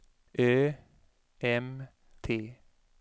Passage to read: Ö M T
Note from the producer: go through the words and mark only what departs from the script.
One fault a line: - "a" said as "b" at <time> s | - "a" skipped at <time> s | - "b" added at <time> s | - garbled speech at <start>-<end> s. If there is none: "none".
none